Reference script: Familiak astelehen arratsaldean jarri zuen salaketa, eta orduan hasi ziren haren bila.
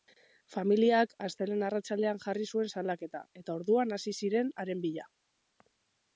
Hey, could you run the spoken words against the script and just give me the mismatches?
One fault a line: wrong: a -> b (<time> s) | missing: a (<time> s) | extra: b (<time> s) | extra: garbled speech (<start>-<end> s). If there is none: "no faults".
no faults